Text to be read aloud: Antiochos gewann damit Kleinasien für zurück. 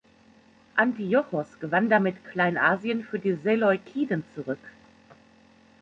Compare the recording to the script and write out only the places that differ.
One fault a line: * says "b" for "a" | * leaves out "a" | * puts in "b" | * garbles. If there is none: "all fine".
* puts in "die Seleukiden"